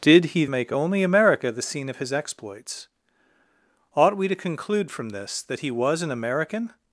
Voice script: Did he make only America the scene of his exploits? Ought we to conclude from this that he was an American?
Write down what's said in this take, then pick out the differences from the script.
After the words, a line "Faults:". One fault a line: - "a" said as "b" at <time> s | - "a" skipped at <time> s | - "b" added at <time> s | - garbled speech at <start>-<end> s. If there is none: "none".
Did he make only America the scene of his exploits? Ought we to conclude from this that he was an American?
Faults:
none